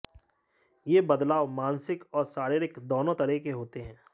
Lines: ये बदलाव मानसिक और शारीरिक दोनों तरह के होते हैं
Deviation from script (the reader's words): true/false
false